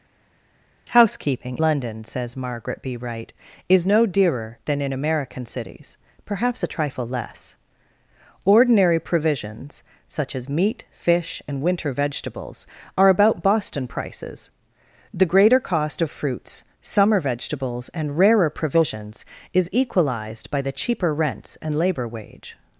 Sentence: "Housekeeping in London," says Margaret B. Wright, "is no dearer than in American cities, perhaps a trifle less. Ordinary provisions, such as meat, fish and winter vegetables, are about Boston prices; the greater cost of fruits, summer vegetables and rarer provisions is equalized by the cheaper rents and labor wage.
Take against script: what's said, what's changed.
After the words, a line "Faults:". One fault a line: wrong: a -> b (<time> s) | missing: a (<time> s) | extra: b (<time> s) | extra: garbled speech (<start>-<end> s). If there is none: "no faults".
"Housekeeping London," says Margaret B. Wright, "is no dearer than in American cities, perhaps a trifle less. Ordinary provisions, such as meat, fish and winter vegetables, are about Boston prices; the greater cost of fruits, summer vegetables and rarer provisions is equalized by the cheaper rents and labor wage.
Faults:
missing: in (1.6 s)